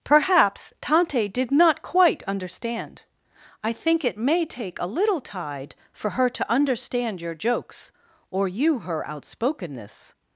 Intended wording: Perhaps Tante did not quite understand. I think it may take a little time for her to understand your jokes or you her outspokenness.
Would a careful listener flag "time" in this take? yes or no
yes